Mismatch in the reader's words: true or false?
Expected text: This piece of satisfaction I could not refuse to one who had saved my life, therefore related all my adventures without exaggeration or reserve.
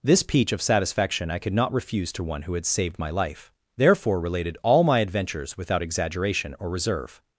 true